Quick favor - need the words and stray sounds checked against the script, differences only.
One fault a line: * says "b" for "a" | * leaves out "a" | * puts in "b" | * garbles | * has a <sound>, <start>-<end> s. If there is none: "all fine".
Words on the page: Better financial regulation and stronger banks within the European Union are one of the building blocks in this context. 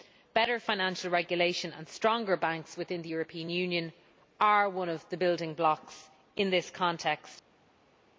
all fine